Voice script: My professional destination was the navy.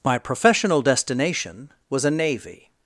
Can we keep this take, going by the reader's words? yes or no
no